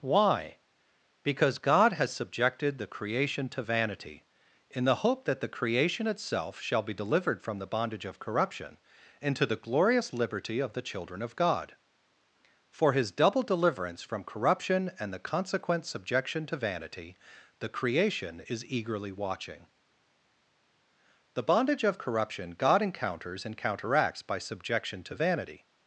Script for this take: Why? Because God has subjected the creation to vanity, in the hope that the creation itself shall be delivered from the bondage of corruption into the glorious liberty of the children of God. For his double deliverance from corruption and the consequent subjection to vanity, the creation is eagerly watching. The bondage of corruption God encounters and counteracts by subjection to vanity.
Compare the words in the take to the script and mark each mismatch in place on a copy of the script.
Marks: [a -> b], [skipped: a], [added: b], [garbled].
Why? Because God has subjected the creation to vanity, in the hope that the creation itself shall be delivered from the bondage of corruption into the glorious liberty of the children of God. For his double deliverance from corruption and the consequent subjection to vanity, the creation is eagerly watching. The bondage of corruption God encounters and counteracts by subjection to vanity.